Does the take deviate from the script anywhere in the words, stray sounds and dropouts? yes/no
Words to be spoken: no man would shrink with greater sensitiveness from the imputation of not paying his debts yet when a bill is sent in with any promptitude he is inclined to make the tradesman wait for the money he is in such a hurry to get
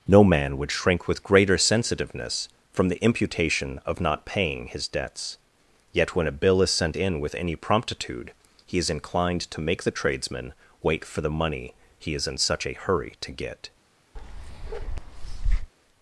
yes